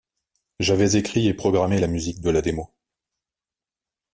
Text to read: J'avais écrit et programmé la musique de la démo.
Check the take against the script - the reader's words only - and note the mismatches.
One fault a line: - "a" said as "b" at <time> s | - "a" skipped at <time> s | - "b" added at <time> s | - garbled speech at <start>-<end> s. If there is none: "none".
none